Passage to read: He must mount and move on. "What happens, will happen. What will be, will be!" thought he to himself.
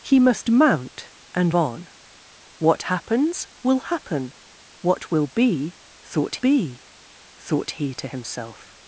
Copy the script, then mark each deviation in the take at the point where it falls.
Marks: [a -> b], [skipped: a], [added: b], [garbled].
He must mount and [skipped: move] on. "What happens, will happen. What will be, [will -> thought] be!" thought he to himself.